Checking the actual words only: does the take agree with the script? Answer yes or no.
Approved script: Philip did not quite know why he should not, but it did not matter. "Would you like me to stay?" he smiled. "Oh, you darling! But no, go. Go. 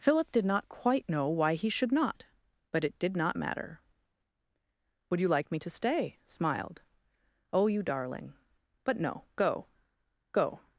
no